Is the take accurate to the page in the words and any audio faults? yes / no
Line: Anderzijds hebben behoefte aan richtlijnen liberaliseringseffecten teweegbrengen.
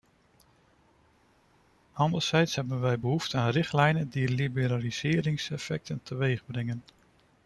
no